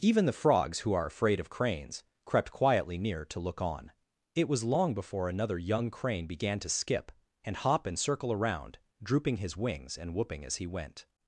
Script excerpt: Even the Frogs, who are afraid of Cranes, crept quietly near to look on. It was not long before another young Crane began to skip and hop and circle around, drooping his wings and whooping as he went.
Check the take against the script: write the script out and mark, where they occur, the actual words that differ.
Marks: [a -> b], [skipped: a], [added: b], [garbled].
Even the Frogs, who are afraid of Cranes, crept quietly near to look on. It was [skipped: not] long before another young Crane began to skip and hop and circle around, drooping his wings and whooping as he went.